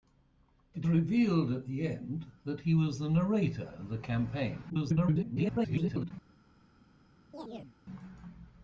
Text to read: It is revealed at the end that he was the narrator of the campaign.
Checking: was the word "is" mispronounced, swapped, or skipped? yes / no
yes